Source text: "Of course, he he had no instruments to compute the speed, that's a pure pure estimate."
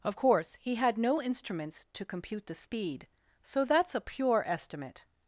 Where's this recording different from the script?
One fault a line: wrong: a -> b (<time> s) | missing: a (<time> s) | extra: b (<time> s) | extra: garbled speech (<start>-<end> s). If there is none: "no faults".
missing: he (0.8 s)
extra: so (3.4 s)
missing: pure (4.4 s)